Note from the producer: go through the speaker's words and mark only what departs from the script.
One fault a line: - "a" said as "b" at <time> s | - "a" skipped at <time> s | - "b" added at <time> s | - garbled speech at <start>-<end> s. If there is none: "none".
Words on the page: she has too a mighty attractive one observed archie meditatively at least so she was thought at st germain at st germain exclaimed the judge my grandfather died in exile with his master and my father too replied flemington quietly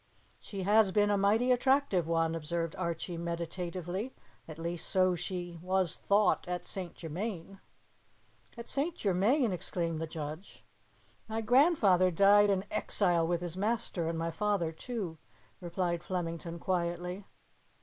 - "too" said as "been" at 0.9 s